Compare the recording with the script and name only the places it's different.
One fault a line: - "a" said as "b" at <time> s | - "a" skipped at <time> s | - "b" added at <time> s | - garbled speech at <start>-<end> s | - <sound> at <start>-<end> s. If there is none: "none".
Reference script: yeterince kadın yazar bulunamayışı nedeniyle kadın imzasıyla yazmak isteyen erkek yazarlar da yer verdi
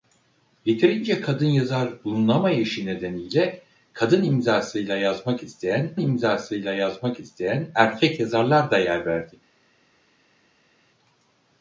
- "imzasıyla yazmak isteyen" added at 6.0 s